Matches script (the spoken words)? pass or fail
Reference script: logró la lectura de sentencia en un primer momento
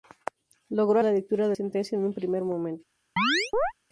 pass